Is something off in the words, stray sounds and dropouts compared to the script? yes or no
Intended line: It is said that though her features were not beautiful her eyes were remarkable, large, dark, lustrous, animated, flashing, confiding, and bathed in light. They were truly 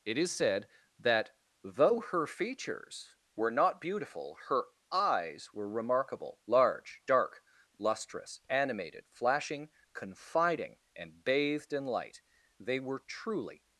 no